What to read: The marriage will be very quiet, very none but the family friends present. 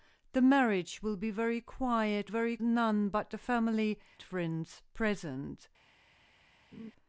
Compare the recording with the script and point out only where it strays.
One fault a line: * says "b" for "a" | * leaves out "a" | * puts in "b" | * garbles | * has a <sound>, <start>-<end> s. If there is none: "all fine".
* has a laugh, 6.7-6.9 s